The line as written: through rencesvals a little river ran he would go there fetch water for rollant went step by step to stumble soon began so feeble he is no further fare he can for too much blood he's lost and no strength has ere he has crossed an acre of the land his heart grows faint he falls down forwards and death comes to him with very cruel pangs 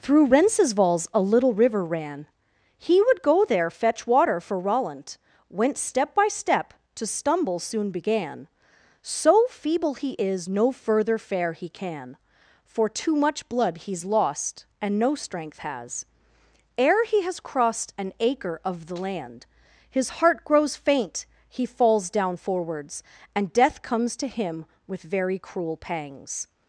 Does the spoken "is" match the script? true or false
true